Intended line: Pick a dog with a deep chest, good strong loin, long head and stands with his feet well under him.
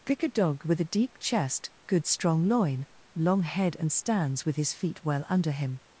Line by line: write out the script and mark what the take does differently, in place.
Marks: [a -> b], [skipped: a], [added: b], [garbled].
Pick a dog with a deep chest, good strong loin, long head and stands with his feet well under him.